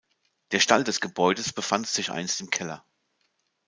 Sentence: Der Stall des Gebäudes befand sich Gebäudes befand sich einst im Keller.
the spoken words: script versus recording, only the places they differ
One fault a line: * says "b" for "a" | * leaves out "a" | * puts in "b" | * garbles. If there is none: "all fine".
* leaves out "Gebäudes befand sich"